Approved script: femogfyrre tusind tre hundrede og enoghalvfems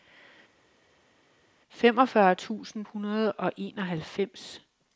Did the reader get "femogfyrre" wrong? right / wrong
right